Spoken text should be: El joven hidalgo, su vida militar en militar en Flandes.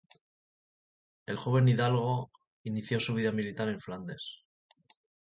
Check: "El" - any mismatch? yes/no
no